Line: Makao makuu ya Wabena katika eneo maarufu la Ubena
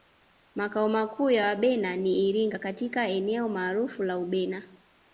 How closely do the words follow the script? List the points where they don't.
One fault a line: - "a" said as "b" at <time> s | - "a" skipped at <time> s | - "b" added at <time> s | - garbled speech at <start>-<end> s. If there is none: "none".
- "ni Iringa" added at 2.0 s